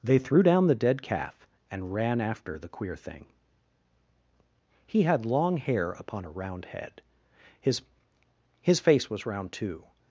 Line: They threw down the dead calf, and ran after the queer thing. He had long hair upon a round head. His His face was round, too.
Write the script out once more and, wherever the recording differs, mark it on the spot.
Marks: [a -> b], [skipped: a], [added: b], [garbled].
They threw down the dead calf, and ran after the queer thing. He had long hair upon a round head. His His face was round, too.